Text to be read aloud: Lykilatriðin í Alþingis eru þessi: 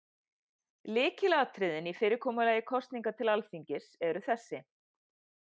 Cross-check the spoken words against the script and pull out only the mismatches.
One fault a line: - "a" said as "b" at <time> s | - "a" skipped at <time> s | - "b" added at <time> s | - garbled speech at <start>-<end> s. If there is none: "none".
- "fyrirkomulagi kosninga til" added at 2.0 s